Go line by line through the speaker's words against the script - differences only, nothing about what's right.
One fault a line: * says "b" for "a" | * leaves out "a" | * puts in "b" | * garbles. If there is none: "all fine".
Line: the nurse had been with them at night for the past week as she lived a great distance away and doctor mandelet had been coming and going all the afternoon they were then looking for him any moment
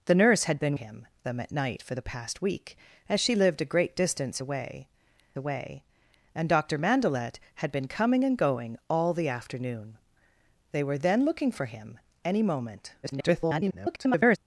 * says "him" for "with"
* puts in "away"
* garbles